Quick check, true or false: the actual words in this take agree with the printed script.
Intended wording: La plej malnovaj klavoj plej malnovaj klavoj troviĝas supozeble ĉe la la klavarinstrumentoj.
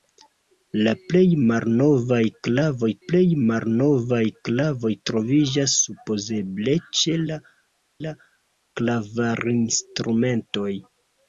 true